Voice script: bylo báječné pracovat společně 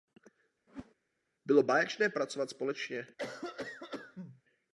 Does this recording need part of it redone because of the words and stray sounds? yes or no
yes